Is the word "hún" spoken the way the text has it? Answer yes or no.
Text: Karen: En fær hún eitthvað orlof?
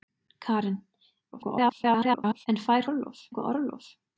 no